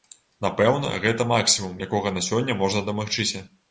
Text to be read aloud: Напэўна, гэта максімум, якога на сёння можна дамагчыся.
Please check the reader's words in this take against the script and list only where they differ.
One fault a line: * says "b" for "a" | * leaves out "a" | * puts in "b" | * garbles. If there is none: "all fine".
all fine